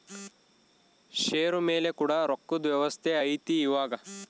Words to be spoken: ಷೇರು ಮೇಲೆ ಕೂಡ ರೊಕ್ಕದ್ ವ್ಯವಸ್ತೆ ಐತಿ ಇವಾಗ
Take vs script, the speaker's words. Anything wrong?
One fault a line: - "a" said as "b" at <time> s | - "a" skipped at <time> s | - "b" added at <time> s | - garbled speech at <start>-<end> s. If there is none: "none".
none